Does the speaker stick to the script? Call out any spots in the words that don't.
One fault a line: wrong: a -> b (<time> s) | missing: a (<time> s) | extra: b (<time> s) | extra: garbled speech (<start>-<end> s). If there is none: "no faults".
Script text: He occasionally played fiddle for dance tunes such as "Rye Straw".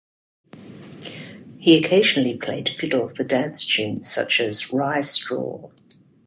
no faults